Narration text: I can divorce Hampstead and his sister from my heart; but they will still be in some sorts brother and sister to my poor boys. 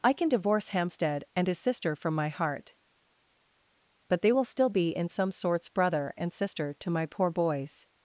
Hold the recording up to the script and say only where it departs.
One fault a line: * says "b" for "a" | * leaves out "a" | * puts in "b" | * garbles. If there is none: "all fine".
all fine